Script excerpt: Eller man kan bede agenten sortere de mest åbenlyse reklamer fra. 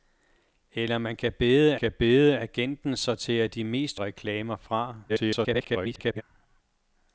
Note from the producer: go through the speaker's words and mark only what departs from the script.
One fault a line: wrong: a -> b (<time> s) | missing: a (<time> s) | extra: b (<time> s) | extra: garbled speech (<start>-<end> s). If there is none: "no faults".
extra: kan bede (1.7 s)
missing: åbenlyse (4.0 s)
extra: garbled speech (5.1-6.2 s)